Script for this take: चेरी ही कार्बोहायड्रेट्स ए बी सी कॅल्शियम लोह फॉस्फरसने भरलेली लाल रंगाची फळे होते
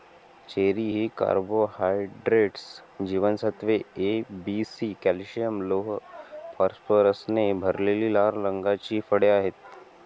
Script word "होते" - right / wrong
wrong